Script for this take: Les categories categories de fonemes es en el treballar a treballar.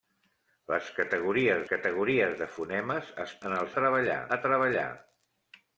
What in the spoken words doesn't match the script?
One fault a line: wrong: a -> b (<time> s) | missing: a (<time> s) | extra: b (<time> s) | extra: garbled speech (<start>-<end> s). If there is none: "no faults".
no faults